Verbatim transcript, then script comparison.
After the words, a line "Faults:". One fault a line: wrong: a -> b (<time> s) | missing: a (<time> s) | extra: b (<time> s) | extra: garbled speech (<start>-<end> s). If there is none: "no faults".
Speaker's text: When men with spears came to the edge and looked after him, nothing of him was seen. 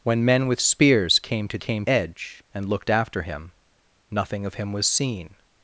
When men with spears came to came edge and looked after him, nothing of him was seen.
Faults:
wrong: the -> came (1.6 s)